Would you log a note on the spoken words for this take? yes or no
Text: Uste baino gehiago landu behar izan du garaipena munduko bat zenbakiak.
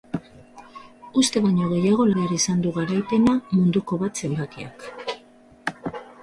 yes